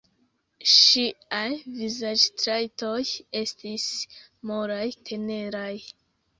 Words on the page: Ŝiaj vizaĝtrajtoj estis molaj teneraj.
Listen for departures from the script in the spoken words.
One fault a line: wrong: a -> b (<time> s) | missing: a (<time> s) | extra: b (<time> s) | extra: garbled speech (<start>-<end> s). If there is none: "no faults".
no faults